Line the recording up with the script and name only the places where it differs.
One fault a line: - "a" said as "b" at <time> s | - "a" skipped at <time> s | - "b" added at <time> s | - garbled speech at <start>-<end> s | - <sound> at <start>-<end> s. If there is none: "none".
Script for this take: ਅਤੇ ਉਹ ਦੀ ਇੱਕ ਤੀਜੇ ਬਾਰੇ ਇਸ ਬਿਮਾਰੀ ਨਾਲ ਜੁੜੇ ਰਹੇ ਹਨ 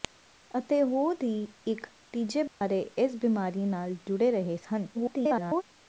- dropout at 2.5-2.6 s
- garbled speech at 4.9-5.6 s